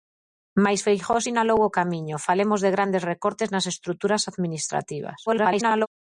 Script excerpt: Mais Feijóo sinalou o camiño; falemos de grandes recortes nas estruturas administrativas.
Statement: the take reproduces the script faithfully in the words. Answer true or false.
false